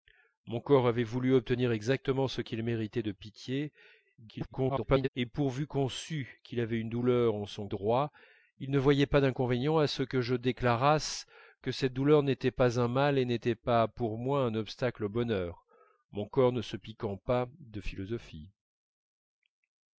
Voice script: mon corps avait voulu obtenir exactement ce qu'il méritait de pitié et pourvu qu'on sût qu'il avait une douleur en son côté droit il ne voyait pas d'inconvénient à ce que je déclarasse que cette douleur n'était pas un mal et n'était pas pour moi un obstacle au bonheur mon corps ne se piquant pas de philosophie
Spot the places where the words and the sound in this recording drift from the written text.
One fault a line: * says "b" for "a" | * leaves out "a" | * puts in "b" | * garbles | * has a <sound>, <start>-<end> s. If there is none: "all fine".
* garbles
* leaves out "côté"